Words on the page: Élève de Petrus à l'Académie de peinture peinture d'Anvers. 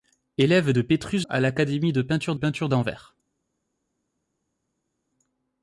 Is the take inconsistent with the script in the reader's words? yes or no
no